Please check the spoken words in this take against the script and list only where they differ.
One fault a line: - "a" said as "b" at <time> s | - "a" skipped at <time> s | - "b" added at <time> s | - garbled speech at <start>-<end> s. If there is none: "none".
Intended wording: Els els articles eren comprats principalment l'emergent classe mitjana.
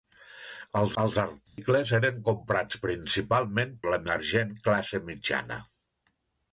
none